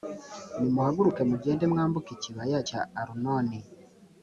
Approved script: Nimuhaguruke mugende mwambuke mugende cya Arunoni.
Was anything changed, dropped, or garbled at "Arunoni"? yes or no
no